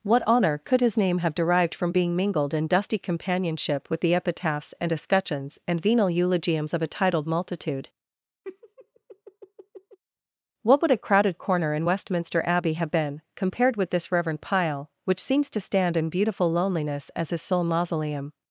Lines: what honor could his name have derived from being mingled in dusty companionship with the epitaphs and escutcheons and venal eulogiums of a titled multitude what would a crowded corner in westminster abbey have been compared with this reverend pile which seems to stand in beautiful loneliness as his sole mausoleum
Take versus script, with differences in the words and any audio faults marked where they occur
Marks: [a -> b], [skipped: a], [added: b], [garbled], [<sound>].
what honor could his name have derived from being mingled in dusty companionship with the epitaphs and escutcheons and venal eulogiums of a titled multitude [laugh] what would a crowded corner in westminster abbey have been compared with this reverend pile which seems to stand in beautiful loneliness as his sole mausoleum